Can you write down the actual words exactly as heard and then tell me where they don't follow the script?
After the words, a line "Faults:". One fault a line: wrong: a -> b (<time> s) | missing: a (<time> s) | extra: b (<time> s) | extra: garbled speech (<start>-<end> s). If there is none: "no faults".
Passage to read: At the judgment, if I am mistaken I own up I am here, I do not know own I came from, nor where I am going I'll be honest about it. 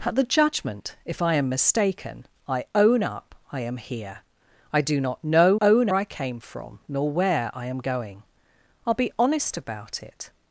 At the judgment, if I am mistaken I own up I am here, I do not know own I came from, nor where I am going I'll be honest about it.
Faults:
no faults